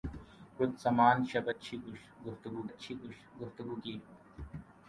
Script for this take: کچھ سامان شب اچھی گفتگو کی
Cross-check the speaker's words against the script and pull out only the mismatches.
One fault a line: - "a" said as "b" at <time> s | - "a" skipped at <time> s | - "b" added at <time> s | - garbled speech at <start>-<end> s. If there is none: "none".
- "اچھی گفتگو" added at 2.7 s